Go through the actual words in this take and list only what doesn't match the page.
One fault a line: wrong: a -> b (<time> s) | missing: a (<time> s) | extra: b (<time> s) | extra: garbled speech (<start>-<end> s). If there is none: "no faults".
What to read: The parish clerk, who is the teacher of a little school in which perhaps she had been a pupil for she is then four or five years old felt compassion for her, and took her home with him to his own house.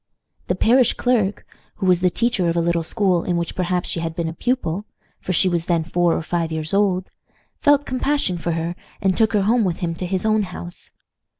wrong: is -> was (1.9 s)
wrong: is -> was (5.5 s)